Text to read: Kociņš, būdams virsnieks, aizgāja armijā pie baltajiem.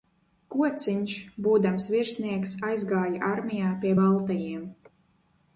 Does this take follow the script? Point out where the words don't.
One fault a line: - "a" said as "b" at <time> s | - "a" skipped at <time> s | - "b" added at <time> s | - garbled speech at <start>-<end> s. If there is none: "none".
none